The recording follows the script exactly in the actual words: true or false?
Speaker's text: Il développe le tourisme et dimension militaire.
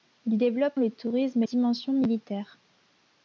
true